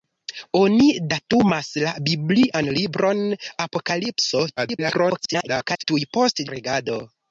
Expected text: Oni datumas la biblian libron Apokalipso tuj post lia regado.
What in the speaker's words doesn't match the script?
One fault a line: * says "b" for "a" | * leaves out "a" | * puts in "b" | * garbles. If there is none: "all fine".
* garbles
* leaves out "lia"